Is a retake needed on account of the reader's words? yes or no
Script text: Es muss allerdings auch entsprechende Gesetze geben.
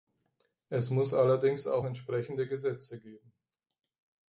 no